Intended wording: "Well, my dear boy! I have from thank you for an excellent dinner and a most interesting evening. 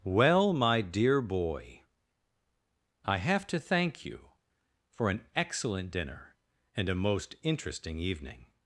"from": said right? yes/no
no